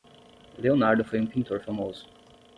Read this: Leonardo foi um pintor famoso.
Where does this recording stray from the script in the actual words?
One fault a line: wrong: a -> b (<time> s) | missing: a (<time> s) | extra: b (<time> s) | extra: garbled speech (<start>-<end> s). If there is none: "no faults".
no faults